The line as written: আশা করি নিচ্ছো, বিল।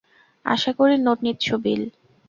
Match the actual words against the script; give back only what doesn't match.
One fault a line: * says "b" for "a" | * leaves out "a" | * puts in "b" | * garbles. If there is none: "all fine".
* puts in "নোট"